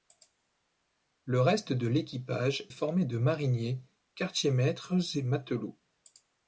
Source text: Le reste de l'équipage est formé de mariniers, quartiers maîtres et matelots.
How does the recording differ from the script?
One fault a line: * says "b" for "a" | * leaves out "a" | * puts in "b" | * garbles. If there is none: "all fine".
* leaves out "est"